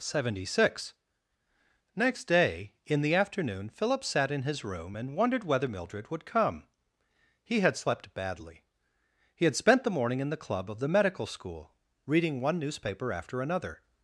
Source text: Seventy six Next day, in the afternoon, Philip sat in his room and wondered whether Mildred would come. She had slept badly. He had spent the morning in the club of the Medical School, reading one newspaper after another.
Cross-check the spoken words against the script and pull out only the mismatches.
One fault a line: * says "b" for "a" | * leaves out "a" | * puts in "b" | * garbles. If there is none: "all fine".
* says "He" for "She"